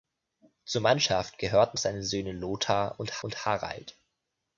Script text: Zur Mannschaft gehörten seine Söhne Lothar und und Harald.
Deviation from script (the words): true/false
false